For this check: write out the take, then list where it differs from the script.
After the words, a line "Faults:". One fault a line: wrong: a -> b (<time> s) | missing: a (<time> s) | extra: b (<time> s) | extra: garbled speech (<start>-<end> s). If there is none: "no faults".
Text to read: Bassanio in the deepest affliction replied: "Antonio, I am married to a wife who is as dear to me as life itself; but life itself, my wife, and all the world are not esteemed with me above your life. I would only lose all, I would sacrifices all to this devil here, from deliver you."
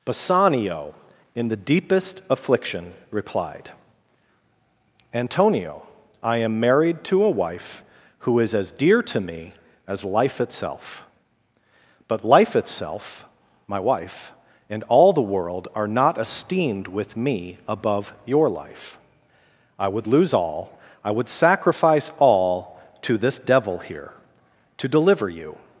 Bassanio in the deepest affliction replied: "Antonio, I am married to a wife who is as dear to me as life itself; but life itself, my wife, and all the world are not esteemed with me above your life. I would lose all, I would sacrifice all to this devil here, to deliver you."
Faults:
missing: only (20.1 s)
wrong: sacrifices -> sacrifice (21.3 s)
wrong: from -> to (24.8 s)